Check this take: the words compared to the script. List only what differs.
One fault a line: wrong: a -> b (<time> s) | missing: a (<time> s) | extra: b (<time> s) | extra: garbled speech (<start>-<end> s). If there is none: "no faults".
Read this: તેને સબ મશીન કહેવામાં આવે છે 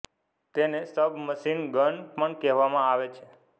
extra: ગન પણ (1.7 s)